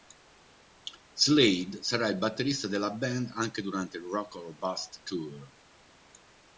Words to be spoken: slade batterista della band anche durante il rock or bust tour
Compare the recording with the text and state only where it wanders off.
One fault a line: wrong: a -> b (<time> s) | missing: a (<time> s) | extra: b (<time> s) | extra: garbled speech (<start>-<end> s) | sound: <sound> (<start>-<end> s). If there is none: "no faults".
extra: sarà il (1.8 s)